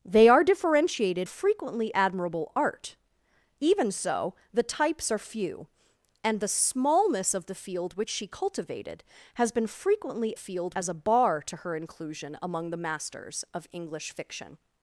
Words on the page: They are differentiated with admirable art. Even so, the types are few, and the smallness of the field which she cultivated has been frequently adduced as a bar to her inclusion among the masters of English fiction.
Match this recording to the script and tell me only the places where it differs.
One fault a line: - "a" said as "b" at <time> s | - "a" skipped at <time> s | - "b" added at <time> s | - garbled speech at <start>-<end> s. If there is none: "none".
- "with" said as "frequently" at 1.2 s
- "adduced" said as "field" at 10.3 s